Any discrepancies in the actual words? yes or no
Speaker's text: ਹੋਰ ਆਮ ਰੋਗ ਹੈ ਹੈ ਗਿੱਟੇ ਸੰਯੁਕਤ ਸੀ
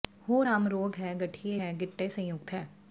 yes